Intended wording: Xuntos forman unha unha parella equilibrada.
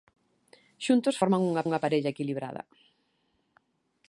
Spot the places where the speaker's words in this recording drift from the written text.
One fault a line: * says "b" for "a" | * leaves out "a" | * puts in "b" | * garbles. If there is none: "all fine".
all fine